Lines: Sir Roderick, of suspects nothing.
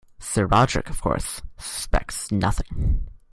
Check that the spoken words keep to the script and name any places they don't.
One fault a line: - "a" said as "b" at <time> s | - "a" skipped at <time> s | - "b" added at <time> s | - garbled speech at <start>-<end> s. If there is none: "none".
- "course" added at 1.0 s